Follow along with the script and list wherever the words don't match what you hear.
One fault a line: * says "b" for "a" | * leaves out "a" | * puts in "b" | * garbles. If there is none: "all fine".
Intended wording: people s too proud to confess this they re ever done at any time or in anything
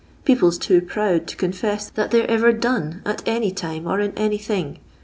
* says "that" for "this"